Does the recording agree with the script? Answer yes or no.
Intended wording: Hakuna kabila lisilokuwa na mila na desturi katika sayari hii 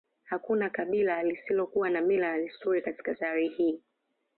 yes